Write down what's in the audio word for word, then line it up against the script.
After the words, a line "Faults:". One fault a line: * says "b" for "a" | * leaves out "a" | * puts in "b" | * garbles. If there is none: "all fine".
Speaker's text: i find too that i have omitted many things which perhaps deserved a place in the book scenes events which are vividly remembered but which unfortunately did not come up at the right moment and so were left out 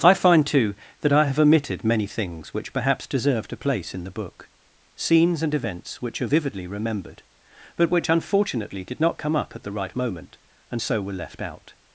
i find too that i have omitted many things which perhaps deserved a place in the book scenes and events which are vividly remembered but which unfortunately did not come up at the right moment and so were left out
Faults:
* puts in "and"